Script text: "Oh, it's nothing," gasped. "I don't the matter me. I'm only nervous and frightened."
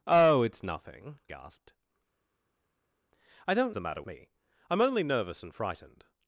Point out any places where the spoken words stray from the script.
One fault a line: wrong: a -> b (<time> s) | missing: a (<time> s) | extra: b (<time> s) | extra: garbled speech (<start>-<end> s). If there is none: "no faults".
no faults